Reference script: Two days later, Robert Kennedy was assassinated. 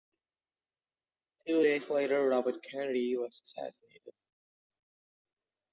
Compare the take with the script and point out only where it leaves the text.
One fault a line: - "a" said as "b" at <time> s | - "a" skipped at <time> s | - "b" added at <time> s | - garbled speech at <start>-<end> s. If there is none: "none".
none